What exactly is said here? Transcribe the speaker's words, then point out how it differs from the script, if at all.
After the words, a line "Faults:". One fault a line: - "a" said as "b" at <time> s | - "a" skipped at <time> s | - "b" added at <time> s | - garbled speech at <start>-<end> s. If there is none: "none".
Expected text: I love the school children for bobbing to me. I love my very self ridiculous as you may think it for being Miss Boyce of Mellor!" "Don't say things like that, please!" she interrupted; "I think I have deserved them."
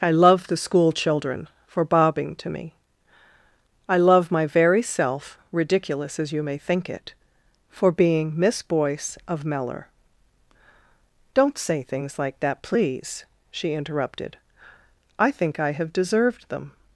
I love the school children for bobbing to me. I love my very self ridiculous as you may think it for being Miss Boyce of Mellor!" "Don't say things like that, please!" she interrupted; "I think I have deserved them."
Faults:
none